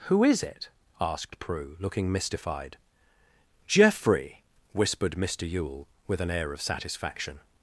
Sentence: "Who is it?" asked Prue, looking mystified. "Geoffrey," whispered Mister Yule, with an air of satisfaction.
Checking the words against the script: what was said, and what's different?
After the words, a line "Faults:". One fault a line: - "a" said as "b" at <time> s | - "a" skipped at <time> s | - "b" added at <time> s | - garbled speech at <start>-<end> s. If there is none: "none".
"Who is it?" asked Prue, looking mystified. "Geoffrey," whispered Mister Yule, with an air of satisfaction.
Faults:
none